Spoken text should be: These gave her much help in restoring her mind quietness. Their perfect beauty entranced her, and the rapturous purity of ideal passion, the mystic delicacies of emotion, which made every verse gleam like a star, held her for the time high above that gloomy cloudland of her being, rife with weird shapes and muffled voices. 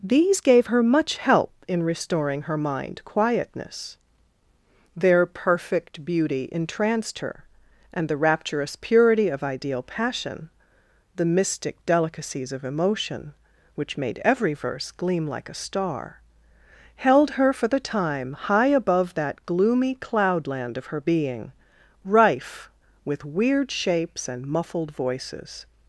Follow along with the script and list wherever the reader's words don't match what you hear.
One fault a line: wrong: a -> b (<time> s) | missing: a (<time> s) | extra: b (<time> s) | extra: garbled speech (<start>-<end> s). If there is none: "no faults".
no faults